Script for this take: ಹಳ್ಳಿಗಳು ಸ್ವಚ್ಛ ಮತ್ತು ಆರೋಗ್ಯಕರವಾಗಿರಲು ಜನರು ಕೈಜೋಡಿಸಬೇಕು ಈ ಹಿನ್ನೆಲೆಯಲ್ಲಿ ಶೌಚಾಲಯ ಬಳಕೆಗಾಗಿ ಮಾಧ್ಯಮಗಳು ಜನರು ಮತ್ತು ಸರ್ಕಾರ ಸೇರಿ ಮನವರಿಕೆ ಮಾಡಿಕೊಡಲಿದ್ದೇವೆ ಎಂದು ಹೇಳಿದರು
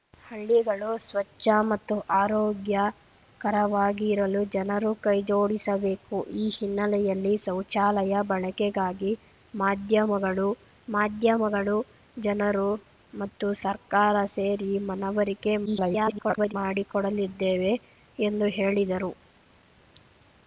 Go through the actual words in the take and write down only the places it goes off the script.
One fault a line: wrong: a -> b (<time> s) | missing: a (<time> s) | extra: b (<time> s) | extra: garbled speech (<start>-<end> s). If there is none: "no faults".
extra: ಮಾಧ್ಯಮಗಳು (10.9 s)
extra: garbled speech (15.7-16.5 s)